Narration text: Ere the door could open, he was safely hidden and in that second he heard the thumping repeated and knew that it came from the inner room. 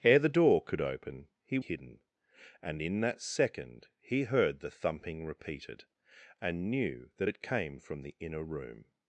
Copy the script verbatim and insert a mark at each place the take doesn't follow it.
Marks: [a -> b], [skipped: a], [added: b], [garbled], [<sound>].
Ere the door could open, he [skipped: was safely] hidden and in that second he heard the thumping repeated and knew that it came from the inner room.